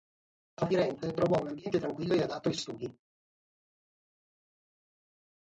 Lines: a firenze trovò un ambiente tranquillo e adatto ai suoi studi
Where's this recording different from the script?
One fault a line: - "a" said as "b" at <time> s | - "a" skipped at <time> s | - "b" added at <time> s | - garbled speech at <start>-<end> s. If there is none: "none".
- "suoi" skipped at 2.5 s